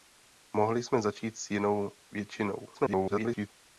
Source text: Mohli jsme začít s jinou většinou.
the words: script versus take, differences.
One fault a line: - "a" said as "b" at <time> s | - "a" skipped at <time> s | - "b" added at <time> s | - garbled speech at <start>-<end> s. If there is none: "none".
- garbled speech at 2.7-3.5 s